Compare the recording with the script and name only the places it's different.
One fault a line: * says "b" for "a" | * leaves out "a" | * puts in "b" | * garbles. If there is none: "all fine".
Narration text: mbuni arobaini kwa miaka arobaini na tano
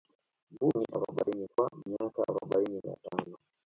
all fine